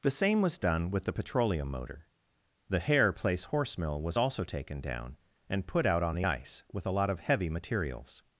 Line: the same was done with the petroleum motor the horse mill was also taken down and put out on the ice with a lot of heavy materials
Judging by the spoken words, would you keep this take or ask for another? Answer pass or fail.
fail